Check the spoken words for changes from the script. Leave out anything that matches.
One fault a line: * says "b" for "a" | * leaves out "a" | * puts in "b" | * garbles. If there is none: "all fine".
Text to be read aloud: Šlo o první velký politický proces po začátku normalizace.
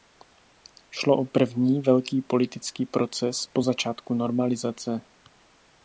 all fine